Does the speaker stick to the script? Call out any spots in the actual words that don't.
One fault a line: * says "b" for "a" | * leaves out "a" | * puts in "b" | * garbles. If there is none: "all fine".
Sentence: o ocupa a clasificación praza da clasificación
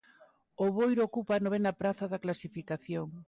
* puts in "boiro"
* says "novena" for "clasificación"